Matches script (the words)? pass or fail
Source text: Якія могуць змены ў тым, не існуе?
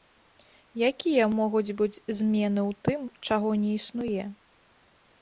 fail